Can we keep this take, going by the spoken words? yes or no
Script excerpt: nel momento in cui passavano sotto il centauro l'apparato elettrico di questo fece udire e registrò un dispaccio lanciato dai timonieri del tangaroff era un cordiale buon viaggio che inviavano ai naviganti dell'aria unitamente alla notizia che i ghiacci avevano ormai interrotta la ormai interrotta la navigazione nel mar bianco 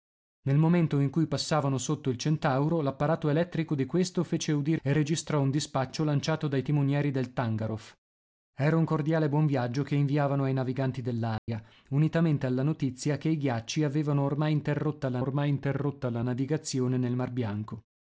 yes